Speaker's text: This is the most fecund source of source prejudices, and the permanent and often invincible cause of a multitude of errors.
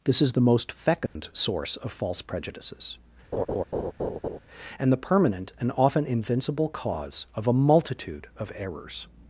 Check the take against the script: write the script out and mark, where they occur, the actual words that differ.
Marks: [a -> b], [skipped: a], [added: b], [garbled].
This is the most fecund source of [source -> false] prejudices, and the permanent and often invincible cause of a multitude of errors.